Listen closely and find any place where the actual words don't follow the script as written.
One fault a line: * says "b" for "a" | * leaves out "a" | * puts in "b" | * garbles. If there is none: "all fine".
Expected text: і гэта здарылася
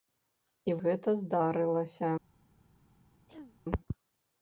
all fine